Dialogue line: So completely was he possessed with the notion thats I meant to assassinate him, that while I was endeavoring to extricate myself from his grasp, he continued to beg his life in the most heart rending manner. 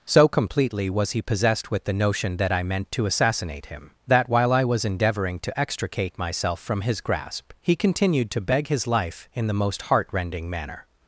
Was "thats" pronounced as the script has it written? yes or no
no